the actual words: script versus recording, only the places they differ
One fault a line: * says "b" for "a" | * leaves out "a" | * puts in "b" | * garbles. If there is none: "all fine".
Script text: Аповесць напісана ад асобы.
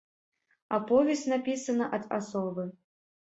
all fine